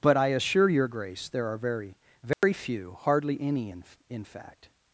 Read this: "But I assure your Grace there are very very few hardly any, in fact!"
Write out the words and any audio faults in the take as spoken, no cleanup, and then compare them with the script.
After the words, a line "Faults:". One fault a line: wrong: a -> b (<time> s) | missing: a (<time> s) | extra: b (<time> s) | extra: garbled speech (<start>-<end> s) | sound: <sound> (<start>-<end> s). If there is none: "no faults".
"But I assure your Grace there are very very few hardly any, in in fact!"
Faults:
sound: dropout (2.3-2.4 s)
extra: in (4.1 s)